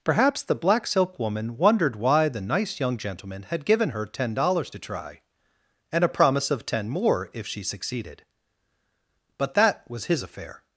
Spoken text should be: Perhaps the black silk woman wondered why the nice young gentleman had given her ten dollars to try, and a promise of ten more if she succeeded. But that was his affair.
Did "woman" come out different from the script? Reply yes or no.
no